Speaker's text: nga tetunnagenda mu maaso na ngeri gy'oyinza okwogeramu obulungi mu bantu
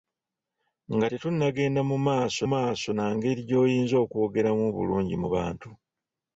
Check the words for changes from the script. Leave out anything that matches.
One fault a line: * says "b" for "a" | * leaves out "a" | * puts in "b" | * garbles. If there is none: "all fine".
* puts in "maaso"